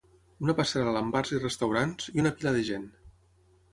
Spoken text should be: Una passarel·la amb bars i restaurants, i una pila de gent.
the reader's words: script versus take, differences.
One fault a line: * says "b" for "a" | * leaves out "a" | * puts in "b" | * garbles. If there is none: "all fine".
all fine